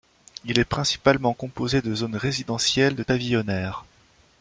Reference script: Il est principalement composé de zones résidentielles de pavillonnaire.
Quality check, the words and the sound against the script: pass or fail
pass